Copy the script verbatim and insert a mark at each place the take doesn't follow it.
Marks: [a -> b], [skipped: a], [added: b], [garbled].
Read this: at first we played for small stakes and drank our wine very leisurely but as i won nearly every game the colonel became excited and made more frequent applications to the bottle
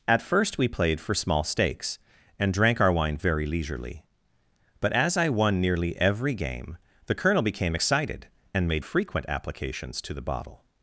at first we played for small stakes and drank our wine very leisurely but as i won nearly every game the colonel became excited and made [skipped: more] frequent applications to the bottle